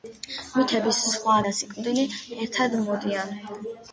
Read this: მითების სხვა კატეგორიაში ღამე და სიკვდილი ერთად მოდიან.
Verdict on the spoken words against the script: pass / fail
fail